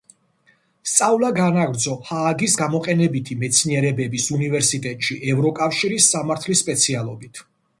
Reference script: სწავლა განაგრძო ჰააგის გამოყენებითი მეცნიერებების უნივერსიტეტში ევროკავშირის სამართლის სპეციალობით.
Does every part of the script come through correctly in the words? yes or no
yes